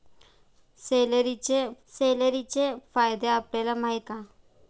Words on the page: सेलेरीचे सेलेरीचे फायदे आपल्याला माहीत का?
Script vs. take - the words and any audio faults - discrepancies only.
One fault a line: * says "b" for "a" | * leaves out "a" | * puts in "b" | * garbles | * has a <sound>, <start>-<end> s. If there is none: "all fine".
all fine